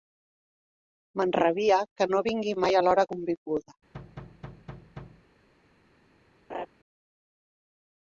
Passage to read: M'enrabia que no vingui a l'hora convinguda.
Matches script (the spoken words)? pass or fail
fail